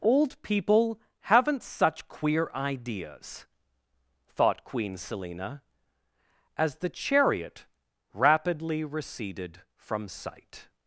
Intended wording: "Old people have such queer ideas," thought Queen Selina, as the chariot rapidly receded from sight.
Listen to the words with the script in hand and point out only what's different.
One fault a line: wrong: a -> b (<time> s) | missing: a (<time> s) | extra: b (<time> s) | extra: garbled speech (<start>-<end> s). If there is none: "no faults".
wrong: have -> haven't (1.2 s)